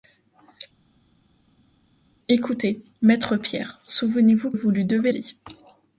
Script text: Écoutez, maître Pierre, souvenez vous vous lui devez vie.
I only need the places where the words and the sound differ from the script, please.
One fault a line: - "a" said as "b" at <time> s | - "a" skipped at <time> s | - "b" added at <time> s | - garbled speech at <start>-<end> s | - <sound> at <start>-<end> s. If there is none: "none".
none